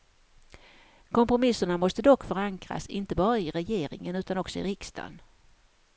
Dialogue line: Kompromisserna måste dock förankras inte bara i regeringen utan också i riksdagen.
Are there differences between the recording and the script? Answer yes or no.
no